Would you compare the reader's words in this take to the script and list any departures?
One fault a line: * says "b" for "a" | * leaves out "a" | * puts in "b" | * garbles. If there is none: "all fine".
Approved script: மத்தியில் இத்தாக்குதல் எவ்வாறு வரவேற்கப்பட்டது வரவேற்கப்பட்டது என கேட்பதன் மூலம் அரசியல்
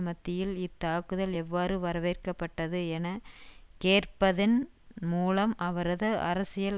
* leaves out "வரவேற்கப்பட்டது"
* puts in "அவரது"